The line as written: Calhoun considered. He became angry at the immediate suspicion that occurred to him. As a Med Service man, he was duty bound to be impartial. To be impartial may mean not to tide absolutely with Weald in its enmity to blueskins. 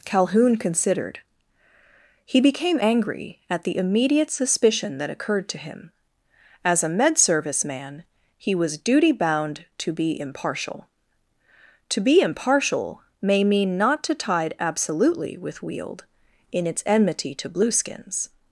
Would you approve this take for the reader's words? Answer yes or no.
yes